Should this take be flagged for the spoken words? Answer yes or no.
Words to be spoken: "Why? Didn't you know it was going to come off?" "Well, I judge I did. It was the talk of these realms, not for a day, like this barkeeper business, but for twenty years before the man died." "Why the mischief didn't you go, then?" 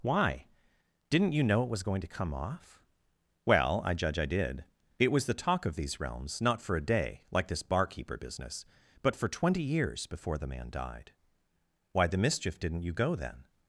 no